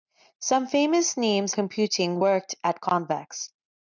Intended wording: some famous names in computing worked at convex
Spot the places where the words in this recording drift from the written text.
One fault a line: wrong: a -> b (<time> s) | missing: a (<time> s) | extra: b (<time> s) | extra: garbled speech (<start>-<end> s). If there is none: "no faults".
missing: in (1.5 s)